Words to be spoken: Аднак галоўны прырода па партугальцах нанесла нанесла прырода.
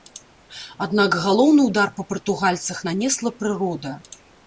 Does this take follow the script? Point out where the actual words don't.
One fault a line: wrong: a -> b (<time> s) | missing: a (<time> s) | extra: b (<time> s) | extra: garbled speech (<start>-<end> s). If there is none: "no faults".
wrong: прырода -> ўдар (1.7 s)
missing: нанесла (3.4 s)